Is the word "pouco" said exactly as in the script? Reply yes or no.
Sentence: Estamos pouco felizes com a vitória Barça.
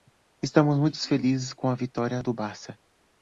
no